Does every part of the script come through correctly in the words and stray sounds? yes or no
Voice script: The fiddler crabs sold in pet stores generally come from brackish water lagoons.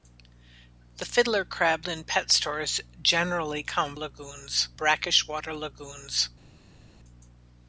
no